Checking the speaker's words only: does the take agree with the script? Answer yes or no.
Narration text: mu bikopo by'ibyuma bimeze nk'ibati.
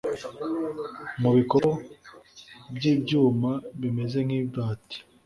yes